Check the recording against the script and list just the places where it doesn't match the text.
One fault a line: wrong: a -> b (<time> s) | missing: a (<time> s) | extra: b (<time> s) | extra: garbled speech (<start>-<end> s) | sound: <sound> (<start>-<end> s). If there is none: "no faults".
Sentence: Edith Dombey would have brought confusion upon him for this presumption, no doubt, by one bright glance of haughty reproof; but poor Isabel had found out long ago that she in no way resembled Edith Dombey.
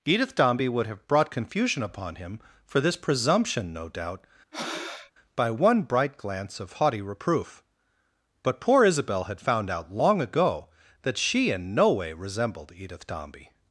sound: breath (4.5-5.1 s)